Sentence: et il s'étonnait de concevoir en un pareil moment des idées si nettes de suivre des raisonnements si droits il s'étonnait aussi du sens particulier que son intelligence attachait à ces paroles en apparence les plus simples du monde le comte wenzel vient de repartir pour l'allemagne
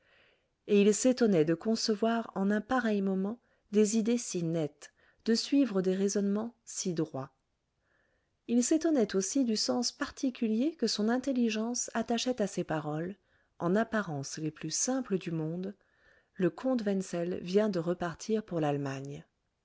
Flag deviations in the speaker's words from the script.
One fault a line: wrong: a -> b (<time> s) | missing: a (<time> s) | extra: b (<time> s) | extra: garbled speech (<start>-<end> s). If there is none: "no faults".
no faults